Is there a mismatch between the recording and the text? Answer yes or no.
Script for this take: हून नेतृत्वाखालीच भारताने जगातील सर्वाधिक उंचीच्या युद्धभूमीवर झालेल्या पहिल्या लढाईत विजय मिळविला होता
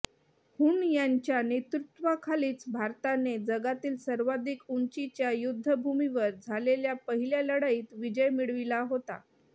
yes